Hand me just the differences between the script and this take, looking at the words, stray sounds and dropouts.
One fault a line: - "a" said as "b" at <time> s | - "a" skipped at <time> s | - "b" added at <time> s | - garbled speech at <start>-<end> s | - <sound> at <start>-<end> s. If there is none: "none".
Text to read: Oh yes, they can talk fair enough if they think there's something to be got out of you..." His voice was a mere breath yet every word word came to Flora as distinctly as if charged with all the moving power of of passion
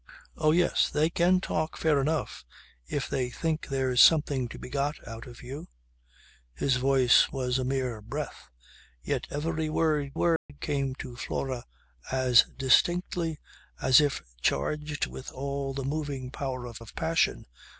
- dropout at 10.4-10.5 s